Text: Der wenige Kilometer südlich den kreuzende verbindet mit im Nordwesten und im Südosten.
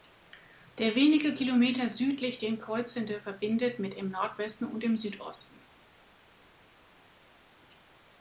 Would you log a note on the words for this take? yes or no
no